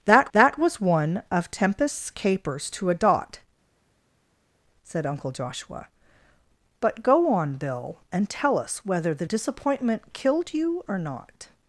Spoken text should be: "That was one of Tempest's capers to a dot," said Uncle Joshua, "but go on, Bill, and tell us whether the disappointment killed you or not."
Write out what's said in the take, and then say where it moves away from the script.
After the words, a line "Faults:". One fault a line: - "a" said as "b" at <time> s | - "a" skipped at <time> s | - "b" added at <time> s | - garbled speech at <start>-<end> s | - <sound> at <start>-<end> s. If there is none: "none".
"That that was one of Tempest's capers to a dot," said Uncle Joshua, "but go on, Bill, and tell us whether the disappointment killed you or not."
Faults:
- "that" added at 0.3 s